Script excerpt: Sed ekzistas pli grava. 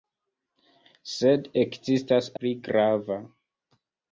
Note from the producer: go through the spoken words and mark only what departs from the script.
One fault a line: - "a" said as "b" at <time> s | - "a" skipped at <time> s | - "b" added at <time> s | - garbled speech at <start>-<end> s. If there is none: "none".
none